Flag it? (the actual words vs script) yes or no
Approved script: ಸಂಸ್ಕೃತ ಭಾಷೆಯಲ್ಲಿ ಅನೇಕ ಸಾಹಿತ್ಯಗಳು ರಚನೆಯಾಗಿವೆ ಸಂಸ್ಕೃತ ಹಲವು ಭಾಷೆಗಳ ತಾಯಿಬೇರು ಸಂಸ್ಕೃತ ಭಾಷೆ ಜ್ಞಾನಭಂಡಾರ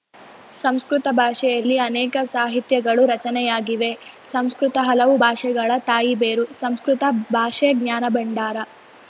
no